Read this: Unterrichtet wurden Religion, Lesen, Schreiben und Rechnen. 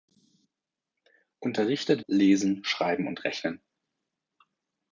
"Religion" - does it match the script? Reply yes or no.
no